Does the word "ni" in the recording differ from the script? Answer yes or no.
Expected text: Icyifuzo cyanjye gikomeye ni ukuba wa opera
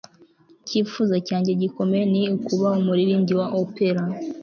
no